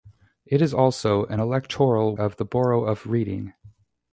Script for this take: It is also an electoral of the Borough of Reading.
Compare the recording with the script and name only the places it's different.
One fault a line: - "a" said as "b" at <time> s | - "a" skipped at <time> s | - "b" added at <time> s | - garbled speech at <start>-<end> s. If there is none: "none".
none